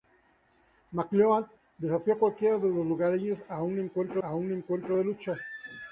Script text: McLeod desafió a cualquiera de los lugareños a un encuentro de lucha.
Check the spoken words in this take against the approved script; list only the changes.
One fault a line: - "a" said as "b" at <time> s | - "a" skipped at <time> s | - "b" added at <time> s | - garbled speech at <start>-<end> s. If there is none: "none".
- "a un encuentro" added at 4.2 s